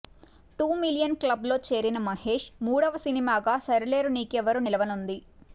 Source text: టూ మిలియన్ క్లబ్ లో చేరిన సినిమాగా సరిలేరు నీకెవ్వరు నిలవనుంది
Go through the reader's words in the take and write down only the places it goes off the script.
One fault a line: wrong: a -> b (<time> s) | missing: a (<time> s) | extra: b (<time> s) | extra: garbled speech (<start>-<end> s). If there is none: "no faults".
extra: మహేష్ మూడవ (2.1 s)